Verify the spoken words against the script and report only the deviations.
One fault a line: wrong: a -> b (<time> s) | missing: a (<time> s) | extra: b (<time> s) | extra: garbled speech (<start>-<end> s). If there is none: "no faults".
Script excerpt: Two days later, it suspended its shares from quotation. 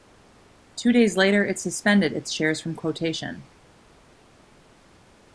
no faults